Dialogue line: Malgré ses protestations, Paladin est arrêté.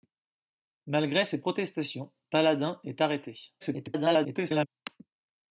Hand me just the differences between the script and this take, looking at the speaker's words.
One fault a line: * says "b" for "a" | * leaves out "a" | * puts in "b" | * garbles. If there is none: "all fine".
* garbles